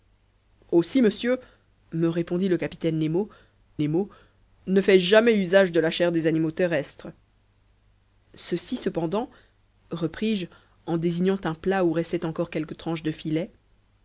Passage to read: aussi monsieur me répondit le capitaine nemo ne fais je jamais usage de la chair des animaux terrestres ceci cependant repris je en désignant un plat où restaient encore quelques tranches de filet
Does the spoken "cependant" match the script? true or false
true